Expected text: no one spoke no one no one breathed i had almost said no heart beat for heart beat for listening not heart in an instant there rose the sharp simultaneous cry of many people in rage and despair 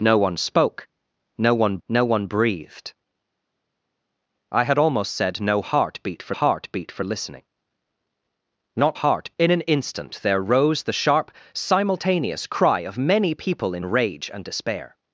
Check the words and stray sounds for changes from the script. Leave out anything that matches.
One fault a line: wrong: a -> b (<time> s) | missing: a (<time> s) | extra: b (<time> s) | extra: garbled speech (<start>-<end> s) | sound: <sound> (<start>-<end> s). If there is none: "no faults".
no faults